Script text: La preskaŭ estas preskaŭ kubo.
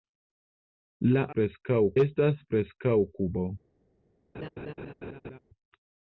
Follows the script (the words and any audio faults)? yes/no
no